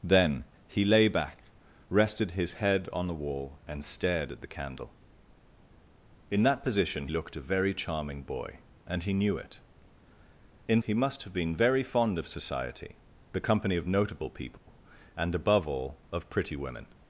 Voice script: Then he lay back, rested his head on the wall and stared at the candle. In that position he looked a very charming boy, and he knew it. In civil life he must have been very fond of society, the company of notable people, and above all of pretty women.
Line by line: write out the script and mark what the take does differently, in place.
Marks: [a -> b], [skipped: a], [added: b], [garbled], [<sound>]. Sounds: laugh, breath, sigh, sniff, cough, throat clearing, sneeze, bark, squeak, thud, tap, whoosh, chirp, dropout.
Then he lay back, rested his head on the wall and stared at the candle. In that position [skipped: he] looked a very charming boy, and he knew it. In [skipped: civil life] he must have been very fond of society, the company of notable people, [dropout] and above all of pretty women.